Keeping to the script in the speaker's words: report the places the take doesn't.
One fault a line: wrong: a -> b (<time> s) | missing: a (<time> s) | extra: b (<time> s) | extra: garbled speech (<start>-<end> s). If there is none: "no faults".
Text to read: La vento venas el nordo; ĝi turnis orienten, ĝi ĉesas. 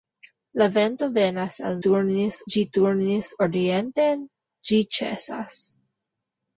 wrong: nordo -> turnis (1.9 s)